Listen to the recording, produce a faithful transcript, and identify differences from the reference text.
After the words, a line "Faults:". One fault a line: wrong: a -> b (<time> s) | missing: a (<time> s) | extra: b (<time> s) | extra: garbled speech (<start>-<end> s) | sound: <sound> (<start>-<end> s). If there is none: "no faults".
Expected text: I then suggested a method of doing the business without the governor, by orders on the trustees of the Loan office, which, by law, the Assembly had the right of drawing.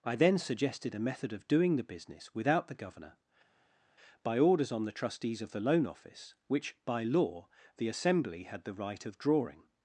I then suggested a method of doing the business without the governor, by orders on the trustees of the Loan office, which, by law, the Assembly had the right of drawing.
Faults:
no faults